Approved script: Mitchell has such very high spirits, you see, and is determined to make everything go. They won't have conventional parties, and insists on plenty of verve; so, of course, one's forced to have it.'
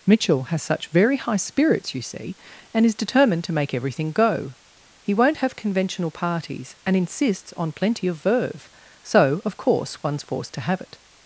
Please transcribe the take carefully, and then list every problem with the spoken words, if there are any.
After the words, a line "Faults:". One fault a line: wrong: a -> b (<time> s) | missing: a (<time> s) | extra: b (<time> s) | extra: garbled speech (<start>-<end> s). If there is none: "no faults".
Mitchell has such very high spirits, you see, and is determined to make everything go. He won't have conventional parties, and insists on plenty of verve; so, of course, one's forced to have it.'
Faults:
wrong: They -> He (5.0 s)